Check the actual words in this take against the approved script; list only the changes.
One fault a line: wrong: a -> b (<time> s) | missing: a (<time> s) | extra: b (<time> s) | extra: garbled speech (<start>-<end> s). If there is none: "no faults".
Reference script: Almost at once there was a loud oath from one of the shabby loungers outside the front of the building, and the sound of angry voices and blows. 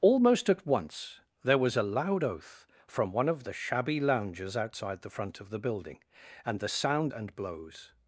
missing: of angry voices (7.1 s)